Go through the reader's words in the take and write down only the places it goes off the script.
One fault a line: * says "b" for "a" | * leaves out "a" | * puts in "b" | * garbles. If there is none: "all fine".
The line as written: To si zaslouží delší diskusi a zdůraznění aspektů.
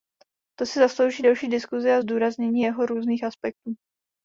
* puts in "jeho různých"